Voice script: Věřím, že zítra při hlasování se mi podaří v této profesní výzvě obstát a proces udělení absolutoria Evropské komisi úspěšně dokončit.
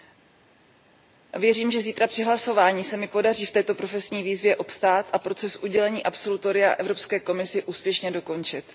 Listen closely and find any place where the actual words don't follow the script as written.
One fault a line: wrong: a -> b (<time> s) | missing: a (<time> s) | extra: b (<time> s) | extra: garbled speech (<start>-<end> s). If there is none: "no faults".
no faults